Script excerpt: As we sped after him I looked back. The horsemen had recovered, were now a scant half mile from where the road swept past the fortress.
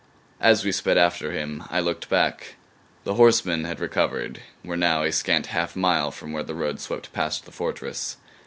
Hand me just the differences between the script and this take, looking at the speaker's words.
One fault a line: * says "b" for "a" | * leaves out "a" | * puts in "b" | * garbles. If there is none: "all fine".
all fine